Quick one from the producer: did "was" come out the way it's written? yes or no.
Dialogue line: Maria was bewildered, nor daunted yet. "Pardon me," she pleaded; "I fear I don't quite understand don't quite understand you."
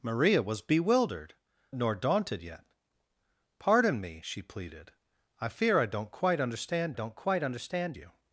yes